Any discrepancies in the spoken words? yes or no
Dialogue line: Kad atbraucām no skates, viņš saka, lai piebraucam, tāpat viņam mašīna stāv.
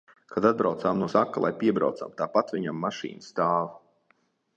yes